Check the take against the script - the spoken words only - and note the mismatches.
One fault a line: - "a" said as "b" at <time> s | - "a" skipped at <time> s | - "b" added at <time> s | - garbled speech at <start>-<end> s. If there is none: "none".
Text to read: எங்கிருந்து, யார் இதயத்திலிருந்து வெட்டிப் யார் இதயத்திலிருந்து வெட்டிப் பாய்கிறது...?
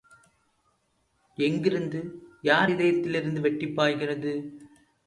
- "யார் இதயத்திலிருந்து வெட்டிப்" skipped at 3.7 s